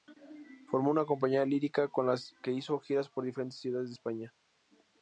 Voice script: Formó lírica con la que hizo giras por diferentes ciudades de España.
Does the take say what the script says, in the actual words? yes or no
no